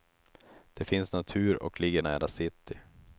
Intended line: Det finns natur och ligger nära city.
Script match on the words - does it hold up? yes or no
yes